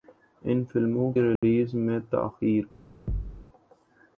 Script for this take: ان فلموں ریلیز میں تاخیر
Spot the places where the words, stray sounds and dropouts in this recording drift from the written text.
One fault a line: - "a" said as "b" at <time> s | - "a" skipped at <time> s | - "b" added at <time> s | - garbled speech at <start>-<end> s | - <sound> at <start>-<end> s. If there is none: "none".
- dropout at 1.4-1.4 s
- thud at 3.1-3.4 s